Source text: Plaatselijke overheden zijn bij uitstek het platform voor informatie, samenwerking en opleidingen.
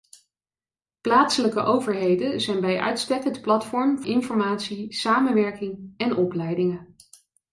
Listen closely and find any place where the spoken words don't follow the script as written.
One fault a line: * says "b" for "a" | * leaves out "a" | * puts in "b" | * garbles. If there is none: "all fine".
* leaves out "voor"